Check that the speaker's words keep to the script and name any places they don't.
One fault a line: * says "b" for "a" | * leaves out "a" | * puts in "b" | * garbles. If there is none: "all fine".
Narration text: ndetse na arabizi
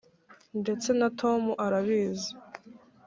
* puts in "tom"